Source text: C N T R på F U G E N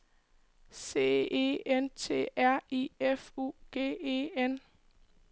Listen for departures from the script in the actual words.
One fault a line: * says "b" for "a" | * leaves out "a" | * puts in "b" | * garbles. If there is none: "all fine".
* puts in "E"
* says "I" for "på"